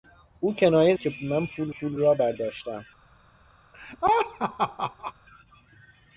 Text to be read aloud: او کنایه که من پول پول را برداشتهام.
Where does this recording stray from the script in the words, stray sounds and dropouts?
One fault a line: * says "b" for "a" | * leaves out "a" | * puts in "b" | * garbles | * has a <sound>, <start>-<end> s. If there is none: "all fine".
* has a laugh, 3.7-5.1 s